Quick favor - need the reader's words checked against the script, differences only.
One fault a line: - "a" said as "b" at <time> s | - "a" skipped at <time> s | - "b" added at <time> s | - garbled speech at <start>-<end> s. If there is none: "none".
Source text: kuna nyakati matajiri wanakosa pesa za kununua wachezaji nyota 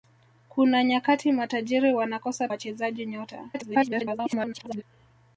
- "pesa za kununua" skipped at 2.5 s
- garbled speech at 3.5-4.8 s